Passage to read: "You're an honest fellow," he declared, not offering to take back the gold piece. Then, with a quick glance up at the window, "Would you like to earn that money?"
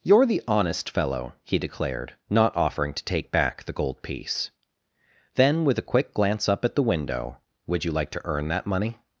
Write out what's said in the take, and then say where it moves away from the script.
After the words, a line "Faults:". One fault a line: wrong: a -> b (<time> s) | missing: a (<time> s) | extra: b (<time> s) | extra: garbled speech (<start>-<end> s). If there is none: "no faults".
"You're the honest fellow," he declared, not offering to take back the gold piece. Then, with a quick glance up at the window, "Would you like to earn that money?"
Faults:
wrong: an -> the (0.2 s)